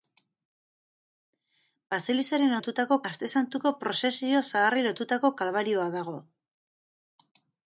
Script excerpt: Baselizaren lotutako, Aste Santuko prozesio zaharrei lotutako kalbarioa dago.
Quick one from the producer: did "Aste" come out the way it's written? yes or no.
yes